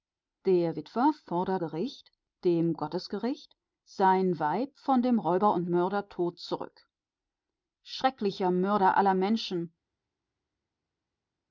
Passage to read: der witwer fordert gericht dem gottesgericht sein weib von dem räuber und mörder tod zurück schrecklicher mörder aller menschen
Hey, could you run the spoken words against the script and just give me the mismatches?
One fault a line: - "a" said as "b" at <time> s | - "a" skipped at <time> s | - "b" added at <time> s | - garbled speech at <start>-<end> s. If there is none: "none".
none